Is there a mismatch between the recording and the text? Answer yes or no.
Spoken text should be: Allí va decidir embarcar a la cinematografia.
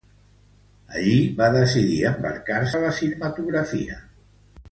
no